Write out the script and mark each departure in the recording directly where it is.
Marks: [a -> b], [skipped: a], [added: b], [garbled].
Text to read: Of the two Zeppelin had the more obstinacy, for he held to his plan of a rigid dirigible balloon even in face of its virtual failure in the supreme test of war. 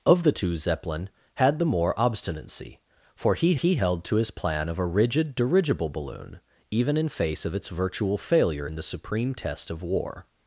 Of the two Zeppelin had the more obstinacy, for he [added: he] held to his plan of a rigid dirigible balloon even in face of its virtual failure in the supreme test of war.